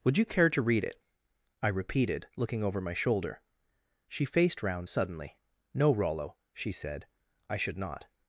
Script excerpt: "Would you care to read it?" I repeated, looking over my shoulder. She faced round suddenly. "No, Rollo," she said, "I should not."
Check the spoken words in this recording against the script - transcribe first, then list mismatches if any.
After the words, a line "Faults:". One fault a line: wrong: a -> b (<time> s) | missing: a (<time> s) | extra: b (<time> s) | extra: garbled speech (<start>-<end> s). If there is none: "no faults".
"Would you care to read it?" I repeated, looking over my shoulder. She faced round suddenly. "No, Rollo," she said, "I should not."
Faults:
no faults